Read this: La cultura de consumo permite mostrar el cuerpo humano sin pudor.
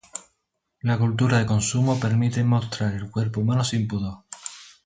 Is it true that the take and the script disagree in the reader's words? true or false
false